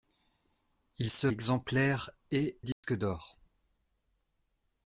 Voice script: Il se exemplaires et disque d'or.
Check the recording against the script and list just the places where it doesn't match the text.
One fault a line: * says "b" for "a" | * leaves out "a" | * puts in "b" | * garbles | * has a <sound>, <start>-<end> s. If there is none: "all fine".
* has a dropout, 2.7-2.8 s